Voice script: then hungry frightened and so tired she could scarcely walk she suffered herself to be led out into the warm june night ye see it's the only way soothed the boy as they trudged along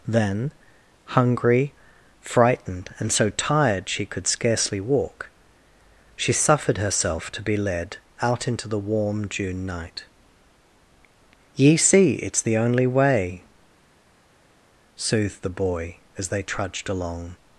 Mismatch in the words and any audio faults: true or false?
false